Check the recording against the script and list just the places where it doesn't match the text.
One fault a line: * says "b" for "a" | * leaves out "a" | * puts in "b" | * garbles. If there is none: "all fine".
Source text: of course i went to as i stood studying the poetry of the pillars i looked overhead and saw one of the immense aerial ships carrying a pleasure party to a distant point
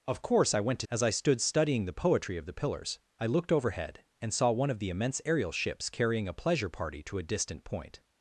all fine